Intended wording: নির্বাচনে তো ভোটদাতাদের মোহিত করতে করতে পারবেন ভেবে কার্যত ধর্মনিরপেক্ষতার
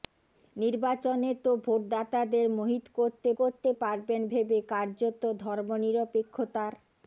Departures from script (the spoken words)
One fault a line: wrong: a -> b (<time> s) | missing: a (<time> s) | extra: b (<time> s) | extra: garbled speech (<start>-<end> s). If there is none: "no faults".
no faults